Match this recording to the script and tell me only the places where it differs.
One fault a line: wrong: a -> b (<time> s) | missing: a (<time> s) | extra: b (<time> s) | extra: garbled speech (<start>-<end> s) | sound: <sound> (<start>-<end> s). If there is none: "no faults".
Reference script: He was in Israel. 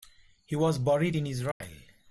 extra: buried (0.8 s)
sound: dropout (1.5-1.6 s)